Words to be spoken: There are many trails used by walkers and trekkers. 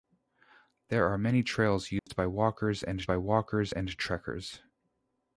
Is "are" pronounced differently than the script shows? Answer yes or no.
no